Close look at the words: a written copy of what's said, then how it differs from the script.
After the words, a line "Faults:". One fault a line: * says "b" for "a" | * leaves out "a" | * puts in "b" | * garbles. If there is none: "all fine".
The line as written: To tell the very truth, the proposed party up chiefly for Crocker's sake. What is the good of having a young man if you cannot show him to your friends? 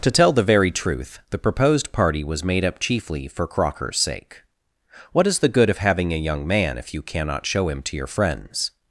To tell the very truth, the proposed party was made up chiefly for Crocker's sake. What is the good of having a young man if you cannot show him to your friends?
Faults:
* puts in "was made"